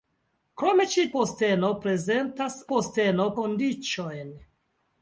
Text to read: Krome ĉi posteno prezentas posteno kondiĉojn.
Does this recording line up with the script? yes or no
yes